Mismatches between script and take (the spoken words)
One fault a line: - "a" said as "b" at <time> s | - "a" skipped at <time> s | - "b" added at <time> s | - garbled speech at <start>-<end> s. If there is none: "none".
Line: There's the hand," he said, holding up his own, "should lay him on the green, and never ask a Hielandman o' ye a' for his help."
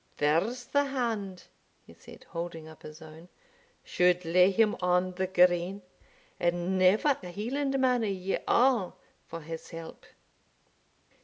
- "ask" skipped at 7.2 s